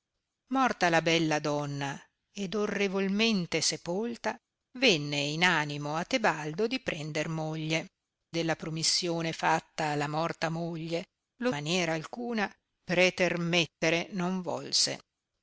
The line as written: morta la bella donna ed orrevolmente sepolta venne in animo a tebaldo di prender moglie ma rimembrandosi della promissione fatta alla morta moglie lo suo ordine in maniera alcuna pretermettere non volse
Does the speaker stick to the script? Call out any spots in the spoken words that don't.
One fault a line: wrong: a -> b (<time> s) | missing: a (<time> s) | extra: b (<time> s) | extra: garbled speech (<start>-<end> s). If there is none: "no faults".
missing: ma rimembrandosi (7.9 s)
missing: suo ordine in (11.5 s)